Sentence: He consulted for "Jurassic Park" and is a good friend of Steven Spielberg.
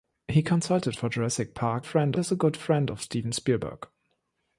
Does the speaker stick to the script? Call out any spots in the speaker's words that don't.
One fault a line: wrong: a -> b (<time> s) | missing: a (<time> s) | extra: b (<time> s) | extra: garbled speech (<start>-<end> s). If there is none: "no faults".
wrong: and -> friend (1.8 s)